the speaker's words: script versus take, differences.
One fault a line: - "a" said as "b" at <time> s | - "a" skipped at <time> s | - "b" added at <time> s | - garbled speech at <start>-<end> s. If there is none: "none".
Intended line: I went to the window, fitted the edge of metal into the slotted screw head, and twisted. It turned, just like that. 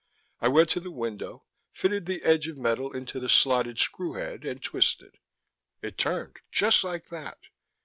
none